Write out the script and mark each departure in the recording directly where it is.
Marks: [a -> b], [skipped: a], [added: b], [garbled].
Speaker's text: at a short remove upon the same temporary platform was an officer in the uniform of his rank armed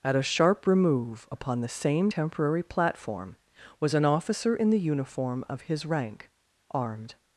at a [short -> sharp] remove upon the same temporary platform was an officer in the uniform of his rank armed